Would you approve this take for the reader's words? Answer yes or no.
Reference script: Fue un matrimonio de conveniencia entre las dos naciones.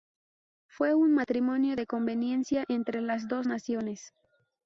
yes